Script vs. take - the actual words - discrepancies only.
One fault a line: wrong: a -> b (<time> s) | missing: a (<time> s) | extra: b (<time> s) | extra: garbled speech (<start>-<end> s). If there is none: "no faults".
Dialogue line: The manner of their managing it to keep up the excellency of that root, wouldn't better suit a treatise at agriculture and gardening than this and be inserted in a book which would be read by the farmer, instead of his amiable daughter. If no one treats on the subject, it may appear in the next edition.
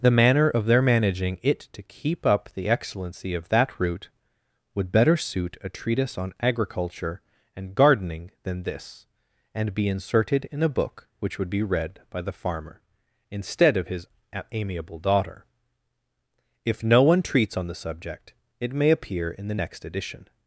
wrong: wouldn't -> would (4.7 s)
wrong: at -> on (6.2 s)